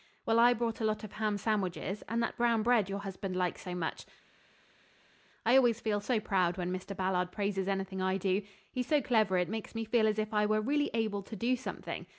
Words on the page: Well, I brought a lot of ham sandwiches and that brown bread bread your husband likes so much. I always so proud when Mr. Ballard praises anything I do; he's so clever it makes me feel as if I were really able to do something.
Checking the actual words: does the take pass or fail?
fail